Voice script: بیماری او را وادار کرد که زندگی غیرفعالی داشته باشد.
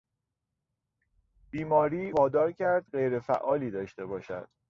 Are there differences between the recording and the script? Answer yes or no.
yes